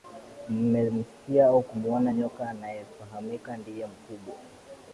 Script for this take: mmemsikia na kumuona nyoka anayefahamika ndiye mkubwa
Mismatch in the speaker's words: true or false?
true